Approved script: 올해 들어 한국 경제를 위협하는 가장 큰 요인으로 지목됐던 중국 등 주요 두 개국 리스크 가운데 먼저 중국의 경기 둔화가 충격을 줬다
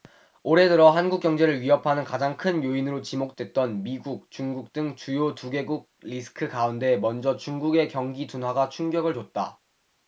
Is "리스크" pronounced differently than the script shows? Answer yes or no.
no